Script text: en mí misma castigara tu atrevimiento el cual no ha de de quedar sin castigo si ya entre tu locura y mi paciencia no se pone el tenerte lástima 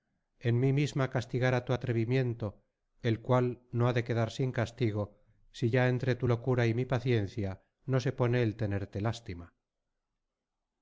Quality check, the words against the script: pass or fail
fail